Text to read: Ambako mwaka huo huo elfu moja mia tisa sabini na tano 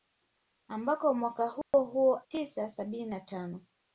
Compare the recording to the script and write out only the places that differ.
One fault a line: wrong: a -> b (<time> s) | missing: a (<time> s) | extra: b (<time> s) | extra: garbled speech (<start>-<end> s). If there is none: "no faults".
missing: elfu moja mia (2.2 s)